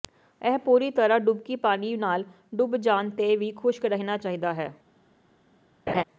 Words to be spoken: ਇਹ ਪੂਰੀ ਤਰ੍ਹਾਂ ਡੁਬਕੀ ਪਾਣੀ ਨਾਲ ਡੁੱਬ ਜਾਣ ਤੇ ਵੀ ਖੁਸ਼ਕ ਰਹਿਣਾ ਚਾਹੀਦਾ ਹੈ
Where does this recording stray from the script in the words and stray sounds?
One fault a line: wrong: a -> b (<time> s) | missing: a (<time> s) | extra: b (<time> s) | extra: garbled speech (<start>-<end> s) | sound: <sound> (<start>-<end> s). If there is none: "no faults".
sound: laugh (5.9-6.0 s)